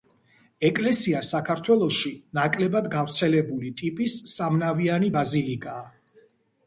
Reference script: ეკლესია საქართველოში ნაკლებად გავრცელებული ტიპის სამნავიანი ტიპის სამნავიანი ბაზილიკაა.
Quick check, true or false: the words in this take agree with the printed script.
false